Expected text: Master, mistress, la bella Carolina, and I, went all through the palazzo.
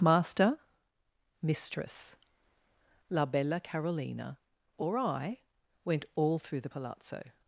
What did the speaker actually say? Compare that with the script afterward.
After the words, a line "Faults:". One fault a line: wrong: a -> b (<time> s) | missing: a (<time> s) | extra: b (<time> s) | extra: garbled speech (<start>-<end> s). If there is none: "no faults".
Master, mistress, la bella Carolina, or I, went all through the palazzo.
Faults:
wrong: and -> or (4.8 s)